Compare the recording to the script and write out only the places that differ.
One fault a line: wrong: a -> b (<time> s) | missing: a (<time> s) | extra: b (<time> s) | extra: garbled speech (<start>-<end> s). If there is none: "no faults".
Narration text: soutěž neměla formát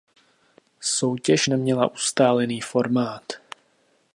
extra: ustálený (1.9 s)